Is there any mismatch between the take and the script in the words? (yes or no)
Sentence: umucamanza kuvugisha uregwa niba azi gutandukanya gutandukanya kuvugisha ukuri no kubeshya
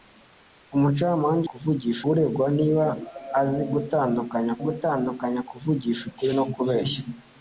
no